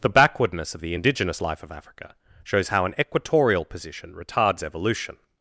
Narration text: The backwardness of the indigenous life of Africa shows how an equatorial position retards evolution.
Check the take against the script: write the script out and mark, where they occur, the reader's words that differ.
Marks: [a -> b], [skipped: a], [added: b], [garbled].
The backwardness of the indigenous life of Africa shows how an equatorial position retards evolution.